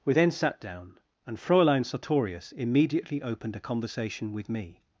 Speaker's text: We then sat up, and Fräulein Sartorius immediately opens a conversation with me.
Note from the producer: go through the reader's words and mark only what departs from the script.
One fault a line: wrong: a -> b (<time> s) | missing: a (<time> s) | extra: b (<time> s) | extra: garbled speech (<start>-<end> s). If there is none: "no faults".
wrong: up -> down (0.6 s)
wrong: opens -> opened (3.2 s)